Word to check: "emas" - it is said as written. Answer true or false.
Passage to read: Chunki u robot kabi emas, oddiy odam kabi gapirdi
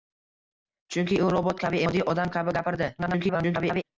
false